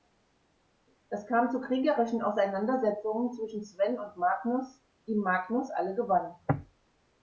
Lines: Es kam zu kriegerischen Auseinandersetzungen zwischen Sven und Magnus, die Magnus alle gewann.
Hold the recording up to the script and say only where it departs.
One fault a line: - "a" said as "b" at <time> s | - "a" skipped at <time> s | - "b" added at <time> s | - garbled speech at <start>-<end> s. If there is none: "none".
none